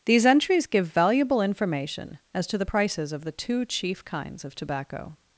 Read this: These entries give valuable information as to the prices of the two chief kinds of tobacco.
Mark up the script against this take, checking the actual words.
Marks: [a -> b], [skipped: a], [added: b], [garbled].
These entries give valuable information as to the prices of the two chief kinds of tobacco.